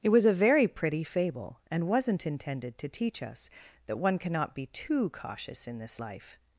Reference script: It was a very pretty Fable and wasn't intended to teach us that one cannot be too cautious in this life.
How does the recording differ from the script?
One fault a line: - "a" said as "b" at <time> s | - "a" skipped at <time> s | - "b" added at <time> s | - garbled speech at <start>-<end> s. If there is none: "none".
none